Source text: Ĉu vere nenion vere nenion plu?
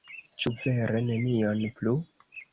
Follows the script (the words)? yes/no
no